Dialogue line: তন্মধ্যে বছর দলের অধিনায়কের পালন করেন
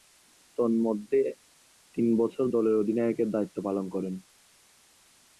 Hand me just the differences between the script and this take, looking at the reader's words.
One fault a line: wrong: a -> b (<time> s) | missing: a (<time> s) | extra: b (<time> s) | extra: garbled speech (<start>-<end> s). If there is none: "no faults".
extra: তিন (1.9 s)
extra: দায়িত্ব (3.3 s)